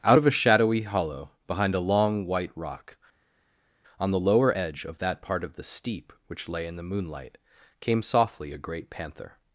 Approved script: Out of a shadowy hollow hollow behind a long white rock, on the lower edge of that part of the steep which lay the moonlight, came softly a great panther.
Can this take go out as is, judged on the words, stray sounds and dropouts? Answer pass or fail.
fail